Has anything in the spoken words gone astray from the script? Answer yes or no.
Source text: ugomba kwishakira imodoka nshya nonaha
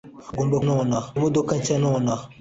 yes